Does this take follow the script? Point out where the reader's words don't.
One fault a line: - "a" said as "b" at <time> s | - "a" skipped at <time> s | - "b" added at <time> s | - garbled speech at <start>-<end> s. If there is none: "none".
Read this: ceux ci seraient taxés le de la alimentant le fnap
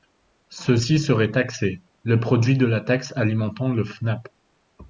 - "produit" added at 2.2 s
- "taxe" added at 2.8 s